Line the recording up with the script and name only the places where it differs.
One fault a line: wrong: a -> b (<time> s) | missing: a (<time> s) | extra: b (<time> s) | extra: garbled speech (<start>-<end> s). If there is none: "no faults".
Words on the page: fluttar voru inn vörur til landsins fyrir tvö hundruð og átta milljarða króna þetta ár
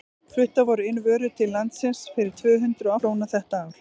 missing: og átta milljarða (2.9 s)